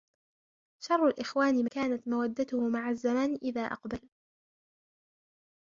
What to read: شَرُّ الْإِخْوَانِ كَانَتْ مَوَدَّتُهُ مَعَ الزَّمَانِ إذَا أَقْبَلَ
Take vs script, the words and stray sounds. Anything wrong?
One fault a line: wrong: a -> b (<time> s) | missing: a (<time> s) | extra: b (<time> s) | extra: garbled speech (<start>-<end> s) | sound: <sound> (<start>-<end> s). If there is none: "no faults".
no faults